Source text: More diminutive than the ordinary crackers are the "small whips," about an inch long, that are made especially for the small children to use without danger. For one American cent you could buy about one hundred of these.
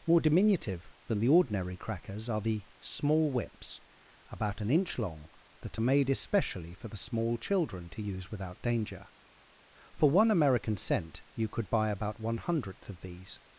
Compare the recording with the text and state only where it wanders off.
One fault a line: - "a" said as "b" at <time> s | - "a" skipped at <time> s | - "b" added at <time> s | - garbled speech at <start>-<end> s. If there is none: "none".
- "hundred" said as "hundredth" at 12.4 s